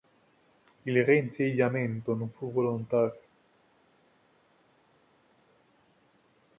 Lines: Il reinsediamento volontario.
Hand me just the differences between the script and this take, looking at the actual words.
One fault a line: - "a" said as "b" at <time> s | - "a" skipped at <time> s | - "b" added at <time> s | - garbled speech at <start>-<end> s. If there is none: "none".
- "non fu" added at 2.1 s